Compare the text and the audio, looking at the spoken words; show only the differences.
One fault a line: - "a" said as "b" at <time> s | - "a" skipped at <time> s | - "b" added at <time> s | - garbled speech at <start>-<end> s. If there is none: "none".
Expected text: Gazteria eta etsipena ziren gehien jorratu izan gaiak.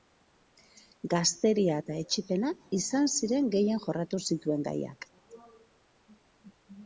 - "izan" added at 2.8 s
- "izan" said as "zituen" at 4.3 s